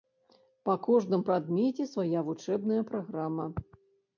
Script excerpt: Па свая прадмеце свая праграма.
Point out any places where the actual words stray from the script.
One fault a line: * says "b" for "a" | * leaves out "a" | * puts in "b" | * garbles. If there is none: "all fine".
* says "кожным" for "свая"
* puts in "вучэбная"